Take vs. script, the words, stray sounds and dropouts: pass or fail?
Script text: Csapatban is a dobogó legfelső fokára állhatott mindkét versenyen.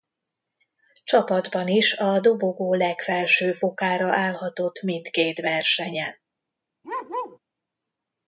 fail